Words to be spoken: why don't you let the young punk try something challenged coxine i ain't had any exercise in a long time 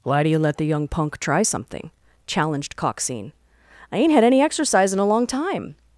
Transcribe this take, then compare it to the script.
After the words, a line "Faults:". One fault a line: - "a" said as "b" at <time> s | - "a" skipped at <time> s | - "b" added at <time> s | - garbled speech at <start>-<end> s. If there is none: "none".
why do you let the young punk try something challenged coxine i ain't had any exercise in a long time
Faults:
- "don't" said as "do" at 0.2 s